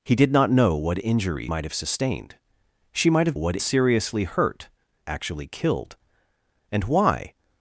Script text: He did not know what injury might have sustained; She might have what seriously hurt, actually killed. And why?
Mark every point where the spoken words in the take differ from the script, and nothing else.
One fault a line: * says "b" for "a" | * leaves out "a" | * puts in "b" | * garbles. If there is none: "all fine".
all fine